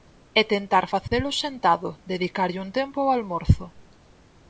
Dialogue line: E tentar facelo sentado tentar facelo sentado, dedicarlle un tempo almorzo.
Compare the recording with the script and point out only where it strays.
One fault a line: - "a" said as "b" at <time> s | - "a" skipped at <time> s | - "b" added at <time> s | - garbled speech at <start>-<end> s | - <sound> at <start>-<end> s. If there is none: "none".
- dropout at 1.1-1.1 s
- "tentar facelo sentado" skipped at 1.9 s
- "ao" added at 3.0 s